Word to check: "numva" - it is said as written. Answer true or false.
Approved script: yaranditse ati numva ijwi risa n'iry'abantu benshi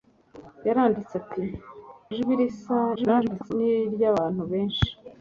false